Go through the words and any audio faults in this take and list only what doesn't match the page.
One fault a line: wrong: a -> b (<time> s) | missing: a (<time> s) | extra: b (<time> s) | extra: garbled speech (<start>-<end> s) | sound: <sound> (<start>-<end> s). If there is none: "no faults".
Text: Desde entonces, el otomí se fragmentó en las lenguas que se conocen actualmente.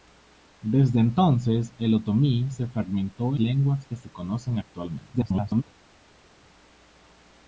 missing: en las (3.4 s)
extra: garbled speech (5.1-5.6 s)